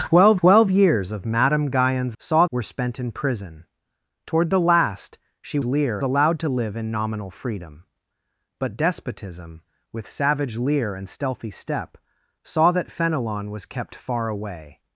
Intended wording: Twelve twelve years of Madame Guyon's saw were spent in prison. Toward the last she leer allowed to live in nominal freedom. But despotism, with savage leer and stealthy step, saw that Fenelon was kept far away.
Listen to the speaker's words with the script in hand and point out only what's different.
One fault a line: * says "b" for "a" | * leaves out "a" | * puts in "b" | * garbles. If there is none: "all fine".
all fine